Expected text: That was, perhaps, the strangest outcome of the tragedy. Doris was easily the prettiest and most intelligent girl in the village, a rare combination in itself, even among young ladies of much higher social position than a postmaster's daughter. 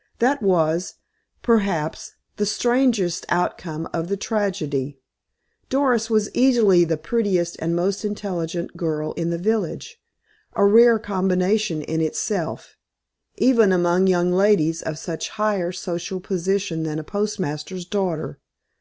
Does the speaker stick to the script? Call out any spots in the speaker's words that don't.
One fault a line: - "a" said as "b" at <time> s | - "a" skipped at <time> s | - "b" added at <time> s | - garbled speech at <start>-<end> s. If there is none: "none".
none